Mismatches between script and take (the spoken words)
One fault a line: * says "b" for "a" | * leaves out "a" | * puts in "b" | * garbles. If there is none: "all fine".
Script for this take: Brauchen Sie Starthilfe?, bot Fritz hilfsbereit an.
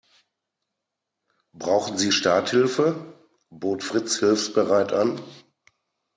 all fine